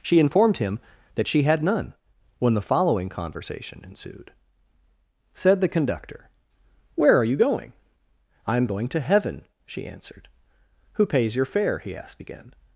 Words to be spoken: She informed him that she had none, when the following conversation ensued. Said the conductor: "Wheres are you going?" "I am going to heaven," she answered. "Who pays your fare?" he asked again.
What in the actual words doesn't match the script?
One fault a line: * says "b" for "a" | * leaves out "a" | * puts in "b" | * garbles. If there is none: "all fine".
* says "Where" for "Wheres"